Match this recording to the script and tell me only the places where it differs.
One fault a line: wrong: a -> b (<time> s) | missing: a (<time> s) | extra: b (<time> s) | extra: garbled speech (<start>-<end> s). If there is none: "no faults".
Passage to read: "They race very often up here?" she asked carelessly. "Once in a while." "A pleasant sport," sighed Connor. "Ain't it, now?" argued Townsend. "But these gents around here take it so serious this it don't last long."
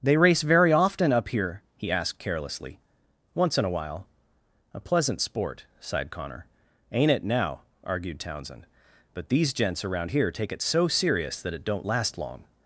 wrong: she -> he (1.8 s)
wrong: this -> that (11.4 s)